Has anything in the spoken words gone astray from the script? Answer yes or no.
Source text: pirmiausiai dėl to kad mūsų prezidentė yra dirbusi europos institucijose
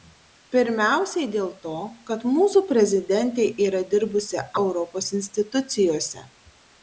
no